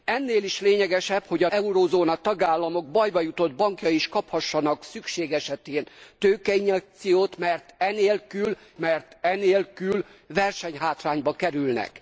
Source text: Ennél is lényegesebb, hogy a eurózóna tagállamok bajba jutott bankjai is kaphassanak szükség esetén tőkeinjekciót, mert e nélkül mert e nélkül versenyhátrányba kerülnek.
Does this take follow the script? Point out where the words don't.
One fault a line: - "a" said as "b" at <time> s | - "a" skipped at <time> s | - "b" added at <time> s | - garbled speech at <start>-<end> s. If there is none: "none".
none